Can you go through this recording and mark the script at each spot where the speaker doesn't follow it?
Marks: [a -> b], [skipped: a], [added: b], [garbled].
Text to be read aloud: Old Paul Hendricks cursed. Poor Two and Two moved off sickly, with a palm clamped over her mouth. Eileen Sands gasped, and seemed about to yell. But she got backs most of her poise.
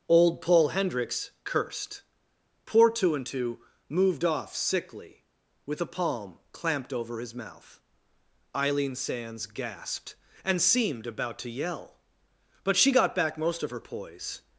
Old Paul Hendricks cursed. Poor Two and Two moved off sickly, with a palm clamped over [her -> his] mouth. Eileen Sands gasped, and seemed about to yell. But she got [backs -> back] most of her poise.